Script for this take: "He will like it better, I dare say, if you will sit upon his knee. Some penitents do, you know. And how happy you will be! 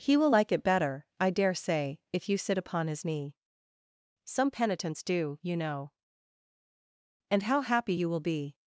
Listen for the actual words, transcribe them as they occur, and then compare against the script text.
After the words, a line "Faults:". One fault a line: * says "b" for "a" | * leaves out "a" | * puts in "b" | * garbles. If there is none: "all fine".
"He will like it better, I dare say, if you sit upon his knee. Some penitents do, you know. And how happy you will be!
Faults:
* leaves out "will"